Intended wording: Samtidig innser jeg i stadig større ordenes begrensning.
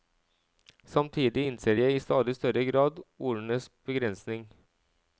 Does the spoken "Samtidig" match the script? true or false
true